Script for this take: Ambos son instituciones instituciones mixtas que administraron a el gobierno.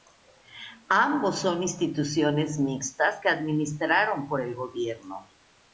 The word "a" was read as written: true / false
false